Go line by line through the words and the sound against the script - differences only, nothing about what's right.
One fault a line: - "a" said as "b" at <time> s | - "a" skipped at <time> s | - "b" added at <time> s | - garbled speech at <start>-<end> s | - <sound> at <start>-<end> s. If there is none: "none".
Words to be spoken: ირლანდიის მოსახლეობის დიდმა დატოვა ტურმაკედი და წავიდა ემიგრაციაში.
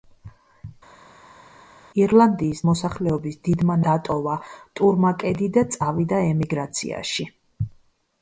none